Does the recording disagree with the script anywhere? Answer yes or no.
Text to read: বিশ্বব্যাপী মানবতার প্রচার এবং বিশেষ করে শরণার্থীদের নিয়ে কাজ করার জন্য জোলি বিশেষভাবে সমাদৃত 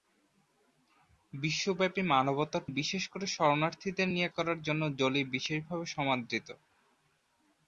yes